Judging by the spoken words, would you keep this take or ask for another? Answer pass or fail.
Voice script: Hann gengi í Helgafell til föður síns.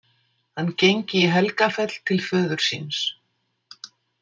pass